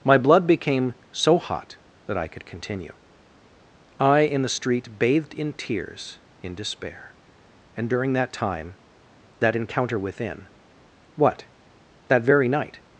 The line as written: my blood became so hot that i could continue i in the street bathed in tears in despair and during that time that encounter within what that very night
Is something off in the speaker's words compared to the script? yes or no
no